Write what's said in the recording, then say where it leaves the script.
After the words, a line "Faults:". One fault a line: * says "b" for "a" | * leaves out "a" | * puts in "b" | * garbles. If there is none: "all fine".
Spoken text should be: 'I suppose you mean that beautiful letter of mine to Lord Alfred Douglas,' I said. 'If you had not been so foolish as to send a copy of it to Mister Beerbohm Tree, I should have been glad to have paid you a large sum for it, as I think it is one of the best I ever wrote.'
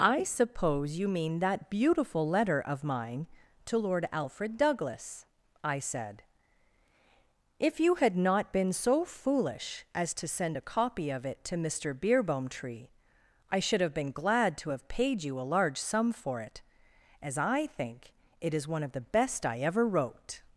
'I suppose you mean that beautiful letter of mine to Lord Alfred Douglas,' I said. 'If you had not been so foolish as to send a copy of it to Mister Beerbohm Tree, I should have been glad to have paid you a large sum for it, as I think it is one of the best I ever wrote.'
Faults:
all fine